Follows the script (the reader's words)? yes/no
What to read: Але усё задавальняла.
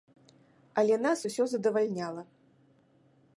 no